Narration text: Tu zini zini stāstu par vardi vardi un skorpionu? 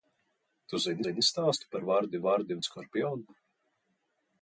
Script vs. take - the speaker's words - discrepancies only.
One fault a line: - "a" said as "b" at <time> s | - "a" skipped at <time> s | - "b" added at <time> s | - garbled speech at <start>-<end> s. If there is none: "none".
none